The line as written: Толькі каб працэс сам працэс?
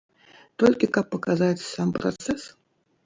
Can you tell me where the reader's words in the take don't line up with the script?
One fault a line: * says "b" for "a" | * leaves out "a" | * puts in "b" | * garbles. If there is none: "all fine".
* says "паказаць" for "працэс"